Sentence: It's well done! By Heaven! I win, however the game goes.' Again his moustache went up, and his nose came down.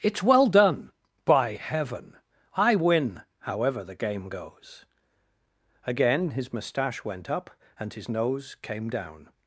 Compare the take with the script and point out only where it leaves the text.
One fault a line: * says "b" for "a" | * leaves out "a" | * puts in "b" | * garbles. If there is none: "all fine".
all fine